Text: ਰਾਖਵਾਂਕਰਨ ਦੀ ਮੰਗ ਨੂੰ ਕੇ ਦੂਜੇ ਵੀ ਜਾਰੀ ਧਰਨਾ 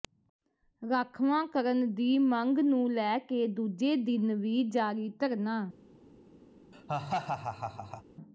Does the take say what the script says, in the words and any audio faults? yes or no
no